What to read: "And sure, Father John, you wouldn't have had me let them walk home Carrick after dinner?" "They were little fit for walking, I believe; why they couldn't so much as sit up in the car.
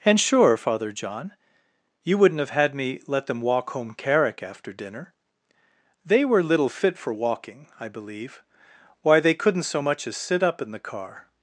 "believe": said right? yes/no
yes